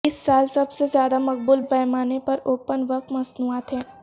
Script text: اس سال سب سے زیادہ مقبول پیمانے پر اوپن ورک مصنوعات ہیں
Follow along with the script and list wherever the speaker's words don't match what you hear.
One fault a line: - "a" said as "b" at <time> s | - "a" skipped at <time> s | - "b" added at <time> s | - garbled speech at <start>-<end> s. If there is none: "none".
none